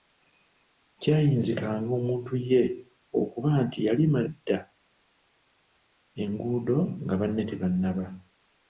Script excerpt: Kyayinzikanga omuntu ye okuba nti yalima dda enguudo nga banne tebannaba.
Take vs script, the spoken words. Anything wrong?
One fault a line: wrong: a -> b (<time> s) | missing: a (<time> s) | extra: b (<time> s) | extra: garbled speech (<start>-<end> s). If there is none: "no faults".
no faults